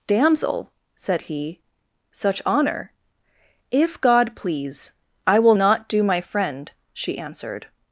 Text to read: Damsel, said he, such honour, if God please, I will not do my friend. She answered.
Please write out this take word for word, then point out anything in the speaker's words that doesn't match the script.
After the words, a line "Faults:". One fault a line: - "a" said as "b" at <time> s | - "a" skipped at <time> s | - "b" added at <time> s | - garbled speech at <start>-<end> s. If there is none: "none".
Damsel, said he, such honour, if God please, I will not do my friend. She answered.
Faults:
none